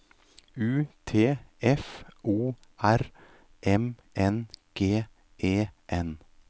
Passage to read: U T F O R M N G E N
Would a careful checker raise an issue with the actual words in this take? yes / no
no